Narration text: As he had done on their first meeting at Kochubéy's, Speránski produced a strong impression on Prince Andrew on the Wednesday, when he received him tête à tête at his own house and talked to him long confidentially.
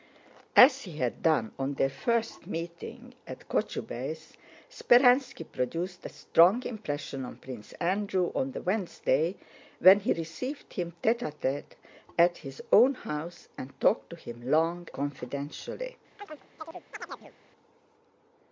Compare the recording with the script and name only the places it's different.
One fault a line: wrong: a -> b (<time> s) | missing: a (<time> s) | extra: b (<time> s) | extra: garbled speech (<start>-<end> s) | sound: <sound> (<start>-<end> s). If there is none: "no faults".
sound: chirp (16.2-17.3 s)